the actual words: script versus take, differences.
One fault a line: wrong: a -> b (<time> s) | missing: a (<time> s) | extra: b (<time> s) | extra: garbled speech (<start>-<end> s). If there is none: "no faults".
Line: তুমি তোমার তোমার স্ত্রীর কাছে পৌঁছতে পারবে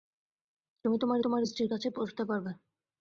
no faults